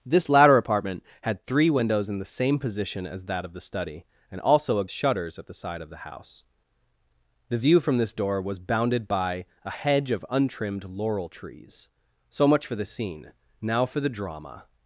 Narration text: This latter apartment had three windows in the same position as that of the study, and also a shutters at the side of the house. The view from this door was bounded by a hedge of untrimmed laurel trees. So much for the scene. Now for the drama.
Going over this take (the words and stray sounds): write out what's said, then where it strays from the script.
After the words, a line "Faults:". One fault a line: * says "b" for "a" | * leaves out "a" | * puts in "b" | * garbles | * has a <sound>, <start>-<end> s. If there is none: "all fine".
This latter apartment had three windows in the same position as that of the study, and also a shutters at the side of the house. The view from this door was bounded by a hedge of untrimmed laurel trees. So much for the scene. Now for the drama.
Faults:
all fine